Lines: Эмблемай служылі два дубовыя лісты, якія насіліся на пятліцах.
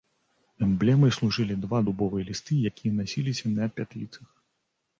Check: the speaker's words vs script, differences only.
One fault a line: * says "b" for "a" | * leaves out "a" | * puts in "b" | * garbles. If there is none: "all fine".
all fine